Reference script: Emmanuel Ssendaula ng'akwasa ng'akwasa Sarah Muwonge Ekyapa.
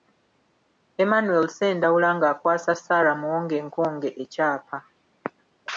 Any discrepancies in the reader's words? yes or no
yes